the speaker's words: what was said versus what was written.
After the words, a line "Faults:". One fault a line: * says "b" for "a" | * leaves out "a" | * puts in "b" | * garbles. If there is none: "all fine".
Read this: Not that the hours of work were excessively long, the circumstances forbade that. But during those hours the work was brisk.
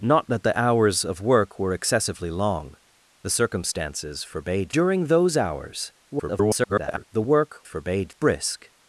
Not that the hours of work were excessively long, the circumstances forbade during those hours [garbled] the work forbade brisk.
Faults:
* leaves out "that But"
* garbles
* says "forbade" for "was"